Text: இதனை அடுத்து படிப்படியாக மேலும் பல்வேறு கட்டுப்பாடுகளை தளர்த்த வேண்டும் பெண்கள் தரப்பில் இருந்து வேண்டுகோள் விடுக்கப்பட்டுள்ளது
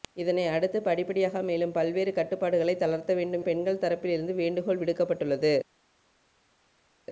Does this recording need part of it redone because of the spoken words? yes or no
no